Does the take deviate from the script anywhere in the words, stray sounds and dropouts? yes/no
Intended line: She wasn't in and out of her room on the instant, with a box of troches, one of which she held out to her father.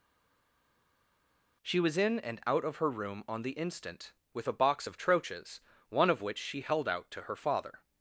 yes